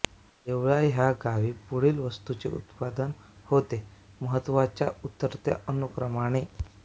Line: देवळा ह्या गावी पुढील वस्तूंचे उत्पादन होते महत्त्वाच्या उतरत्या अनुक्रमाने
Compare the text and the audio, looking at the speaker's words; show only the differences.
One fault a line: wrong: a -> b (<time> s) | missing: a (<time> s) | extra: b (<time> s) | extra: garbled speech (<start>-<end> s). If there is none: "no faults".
no faults